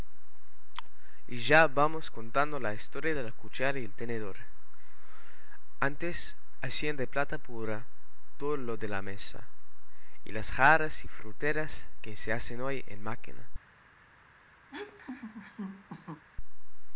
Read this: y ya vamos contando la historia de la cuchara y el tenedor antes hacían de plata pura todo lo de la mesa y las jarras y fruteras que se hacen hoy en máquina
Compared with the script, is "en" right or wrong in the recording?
right